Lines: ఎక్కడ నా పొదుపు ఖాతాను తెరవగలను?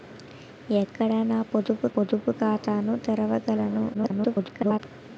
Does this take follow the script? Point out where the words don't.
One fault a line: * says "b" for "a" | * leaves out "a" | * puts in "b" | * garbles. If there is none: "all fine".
* puts in "పొదుపు"
* garbles